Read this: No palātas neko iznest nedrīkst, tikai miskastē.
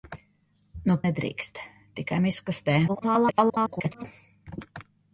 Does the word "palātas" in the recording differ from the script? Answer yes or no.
yes